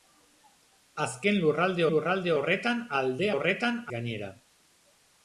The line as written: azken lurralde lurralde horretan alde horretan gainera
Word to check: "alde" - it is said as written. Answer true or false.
true